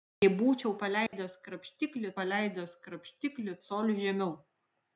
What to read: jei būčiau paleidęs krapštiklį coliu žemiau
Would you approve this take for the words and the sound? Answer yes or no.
no